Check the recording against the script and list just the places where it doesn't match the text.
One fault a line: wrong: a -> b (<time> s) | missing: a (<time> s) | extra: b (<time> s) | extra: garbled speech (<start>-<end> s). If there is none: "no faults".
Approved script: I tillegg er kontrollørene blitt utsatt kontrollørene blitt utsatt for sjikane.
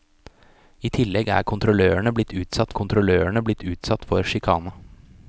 no faults